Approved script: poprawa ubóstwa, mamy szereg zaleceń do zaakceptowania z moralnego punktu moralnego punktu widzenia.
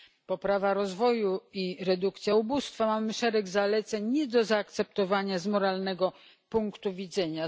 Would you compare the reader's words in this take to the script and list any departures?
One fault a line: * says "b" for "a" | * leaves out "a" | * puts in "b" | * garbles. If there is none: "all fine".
* puts in "rozwoju i redukcja"
* puts in "nie"
* leaves out "moralnego punktu"